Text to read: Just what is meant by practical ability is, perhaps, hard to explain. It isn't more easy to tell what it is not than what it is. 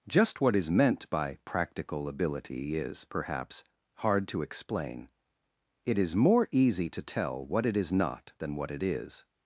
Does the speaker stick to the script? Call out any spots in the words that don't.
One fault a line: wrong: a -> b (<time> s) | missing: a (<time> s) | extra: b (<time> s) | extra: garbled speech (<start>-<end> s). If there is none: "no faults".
wrong: isn't -> is (6.0 s)